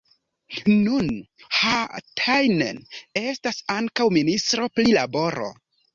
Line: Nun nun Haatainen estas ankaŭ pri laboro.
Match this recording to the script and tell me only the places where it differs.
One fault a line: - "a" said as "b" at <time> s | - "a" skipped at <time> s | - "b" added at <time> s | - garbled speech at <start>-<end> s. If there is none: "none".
- "nun" skipped at 1.1 s
- "ministro" added at 4.2 s